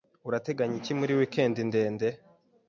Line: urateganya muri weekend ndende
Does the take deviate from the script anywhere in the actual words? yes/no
yes